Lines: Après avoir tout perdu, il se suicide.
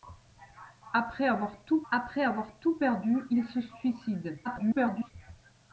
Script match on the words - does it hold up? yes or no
no